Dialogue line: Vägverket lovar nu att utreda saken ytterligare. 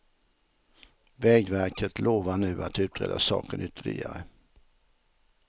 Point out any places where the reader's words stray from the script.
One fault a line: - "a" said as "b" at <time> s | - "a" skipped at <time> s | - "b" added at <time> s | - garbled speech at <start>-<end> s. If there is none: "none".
none